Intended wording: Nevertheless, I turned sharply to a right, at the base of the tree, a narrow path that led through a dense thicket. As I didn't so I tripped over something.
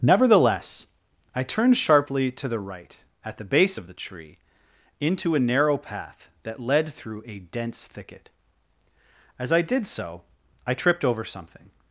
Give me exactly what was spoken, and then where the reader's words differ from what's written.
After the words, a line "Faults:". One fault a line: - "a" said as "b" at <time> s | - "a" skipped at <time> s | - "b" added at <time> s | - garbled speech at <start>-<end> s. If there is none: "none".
Nevertheless, I turned sharply to the right, at the base of the tree, into a narrow path that led through a dense thicket. As I did so I tripped over something.
Faults:
- "a" said as "the" at 2.5 s
- "into" added at 5.0 s
- "didn't" said as "did" at 9.6 s